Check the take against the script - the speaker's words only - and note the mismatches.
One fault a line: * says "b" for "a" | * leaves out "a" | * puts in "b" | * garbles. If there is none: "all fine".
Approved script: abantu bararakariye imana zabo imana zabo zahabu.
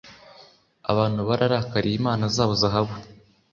* leaves out "imana zabo"